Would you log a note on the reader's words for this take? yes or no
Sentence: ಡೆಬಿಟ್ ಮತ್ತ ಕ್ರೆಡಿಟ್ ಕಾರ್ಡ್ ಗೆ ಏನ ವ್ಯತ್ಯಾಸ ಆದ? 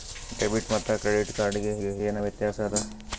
yes